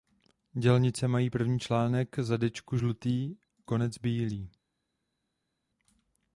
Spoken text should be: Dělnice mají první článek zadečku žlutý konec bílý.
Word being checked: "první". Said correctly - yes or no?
yes